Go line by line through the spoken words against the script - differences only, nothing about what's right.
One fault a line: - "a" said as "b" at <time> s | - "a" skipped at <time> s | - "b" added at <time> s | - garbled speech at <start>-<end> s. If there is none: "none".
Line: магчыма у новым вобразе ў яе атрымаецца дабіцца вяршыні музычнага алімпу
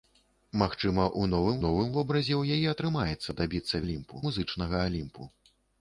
- "новым" added at 1.6 s
- "вяршыні" said as "алімпу" at 3.9 s